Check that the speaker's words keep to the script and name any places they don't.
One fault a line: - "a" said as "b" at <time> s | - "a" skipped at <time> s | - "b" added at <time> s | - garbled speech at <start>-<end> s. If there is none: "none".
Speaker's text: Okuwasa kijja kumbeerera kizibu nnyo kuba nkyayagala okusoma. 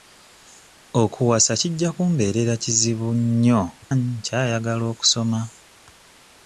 - "kuba" skipped at 3.6 s